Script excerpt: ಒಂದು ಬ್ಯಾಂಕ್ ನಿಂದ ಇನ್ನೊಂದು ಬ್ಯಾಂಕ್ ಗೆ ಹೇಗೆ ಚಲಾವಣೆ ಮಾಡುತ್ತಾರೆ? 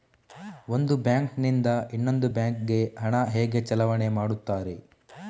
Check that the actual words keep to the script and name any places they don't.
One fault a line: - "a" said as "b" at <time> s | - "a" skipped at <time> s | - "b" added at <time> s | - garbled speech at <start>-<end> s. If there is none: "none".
- "ಹಣ" added at 3.0 s